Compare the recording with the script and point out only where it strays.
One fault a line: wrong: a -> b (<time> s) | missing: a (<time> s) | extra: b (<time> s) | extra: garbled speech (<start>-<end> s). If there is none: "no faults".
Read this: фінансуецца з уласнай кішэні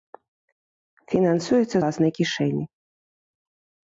missing: з (1.8 s)